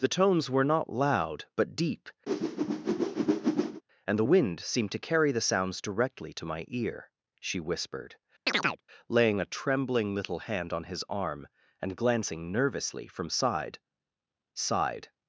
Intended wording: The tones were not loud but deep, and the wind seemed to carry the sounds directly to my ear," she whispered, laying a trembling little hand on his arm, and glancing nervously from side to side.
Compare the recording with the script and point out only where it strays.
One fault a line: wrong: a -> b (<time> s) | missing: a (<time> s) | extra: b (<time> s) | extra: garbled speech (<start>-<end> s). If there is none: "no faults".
missing: to (13.8 s)